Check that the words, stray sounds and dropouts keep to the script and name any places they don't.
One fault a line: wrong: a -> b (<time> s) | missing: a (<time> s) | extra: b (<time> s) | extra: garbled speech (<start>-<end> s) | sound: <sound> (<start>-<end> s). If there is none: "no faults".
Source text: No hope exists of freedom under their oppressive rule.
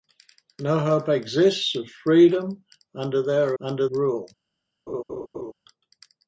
wrong: oppressive -> under (3.6 s)
sound: laugh (4.9-5.5 s)